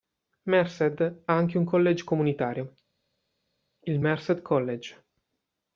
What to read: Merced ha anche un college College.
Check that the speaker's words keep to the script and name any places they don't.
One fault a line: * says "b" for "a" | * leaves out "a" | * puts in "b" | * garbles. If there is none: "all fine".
* puts in "comunitario il Merced"